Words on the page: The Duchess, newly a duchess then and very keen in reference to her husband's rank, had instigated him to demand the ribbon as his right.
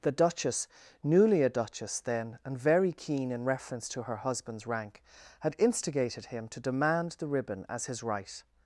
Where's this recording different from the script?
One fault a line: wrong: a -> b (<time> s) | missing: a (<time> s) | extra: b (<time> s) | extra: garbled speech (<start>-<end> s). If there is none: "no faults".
no faults